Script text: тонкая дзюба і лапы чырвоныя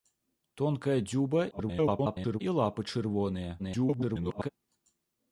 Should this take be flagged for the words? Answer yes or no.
yes